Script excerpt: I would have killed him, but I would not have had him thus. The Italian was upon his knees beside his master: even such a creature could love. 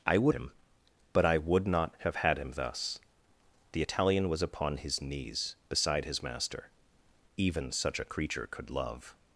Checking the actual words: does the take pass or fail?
fail